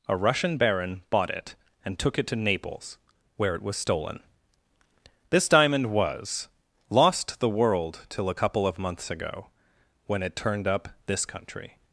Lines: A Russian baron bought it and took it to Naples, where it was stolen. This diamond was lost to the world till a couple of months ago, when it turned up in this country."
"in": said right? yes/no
no